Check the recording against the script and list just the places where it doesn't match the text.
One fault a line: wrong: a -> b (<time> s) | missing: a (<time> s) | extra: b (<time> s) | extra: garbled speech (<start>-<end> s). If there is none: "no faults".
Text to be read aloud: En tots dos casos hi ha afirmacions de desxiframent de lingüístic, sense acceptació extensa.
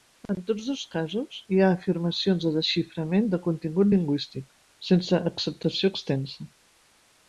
extra: contingut (3.5 s)